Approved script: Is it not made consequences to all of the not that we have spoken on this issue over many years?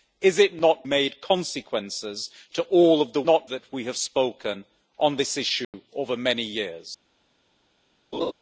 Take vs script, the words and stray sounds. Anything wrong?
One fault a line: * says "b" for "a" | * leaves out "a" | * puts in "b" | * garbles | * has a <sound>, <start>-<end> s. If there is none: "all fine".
* has a dropout, 5.6-5.7 s
* has a laugh, 8.1-8.3 s